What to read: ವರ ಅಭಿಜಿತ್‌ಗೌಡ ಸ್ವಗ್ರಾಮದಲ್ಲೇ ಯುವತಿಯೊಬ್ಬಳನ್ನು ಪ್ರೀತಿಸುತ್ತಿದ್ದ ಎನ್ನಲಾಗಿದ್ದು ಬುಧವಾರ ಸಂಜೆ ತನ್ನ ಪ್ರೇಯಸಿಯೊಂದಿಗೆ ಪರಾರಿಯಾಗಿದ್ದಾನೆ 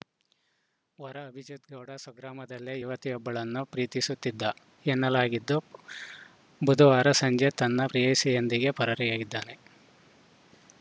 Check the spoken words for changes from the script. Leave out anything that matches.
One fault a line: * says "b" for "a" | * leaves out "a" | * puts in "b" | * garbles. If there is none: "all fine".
all fine